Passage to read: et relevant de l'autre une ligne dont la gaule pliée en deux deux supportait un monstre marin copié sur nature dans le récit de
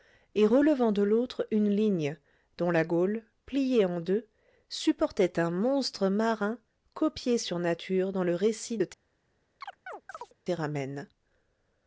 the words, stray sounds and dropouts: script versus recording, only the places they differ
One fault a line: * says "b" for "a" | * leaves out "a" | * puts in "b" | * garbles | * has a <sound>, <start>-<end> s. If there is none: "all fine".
* leaves out "deux"
* has a chirp, 9.6-10.3 s